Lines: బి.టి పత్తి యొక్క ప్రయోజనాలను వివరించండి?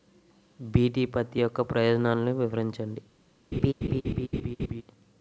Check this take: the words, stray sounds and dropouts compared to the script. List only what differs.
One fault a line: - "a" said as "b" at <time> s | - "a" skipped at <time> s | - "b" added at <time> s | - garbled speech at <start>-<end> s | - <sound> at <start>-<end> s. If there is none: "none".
- laugh at 3.5-4.8 s